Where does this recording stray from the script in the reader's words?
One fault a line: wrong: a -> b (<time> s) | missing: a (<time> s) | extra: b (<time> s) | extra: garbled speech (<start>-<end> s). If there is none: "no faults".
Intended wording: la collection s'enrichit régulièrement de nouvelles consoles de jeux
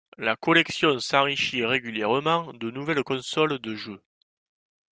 no faults